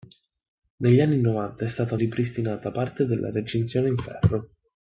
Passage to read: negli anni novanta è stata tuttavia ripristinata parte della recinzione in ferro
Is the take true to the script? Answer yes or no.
no